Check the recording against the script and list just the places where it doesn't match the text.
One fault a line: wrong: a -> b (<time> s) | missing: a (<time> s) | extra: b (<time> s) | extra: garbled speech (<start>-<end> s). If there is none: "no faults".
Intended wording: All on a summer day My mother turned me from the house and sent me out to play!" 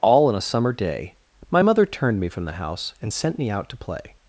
no faults